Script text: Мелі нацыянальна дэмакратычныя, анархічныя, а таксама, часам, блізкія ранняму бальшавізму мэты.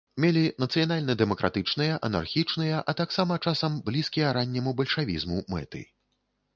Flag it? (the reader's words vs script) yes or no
no